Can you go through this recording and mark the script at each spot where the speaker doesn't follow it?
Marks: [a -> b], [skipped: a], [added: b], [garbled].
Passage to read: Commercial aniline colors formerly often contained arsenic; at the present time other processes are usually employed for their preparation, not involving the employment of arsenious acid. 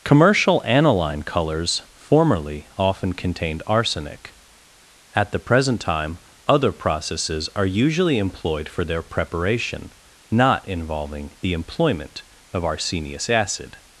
Commercial aniline colors formerly often contained arsenic; at the present time other processes are usually employed for their preparation, not involving the employment of arsenious acid.